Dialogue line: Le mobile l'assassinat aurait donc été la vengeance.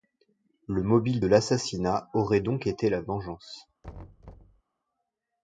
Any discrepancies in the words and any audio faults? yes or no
yes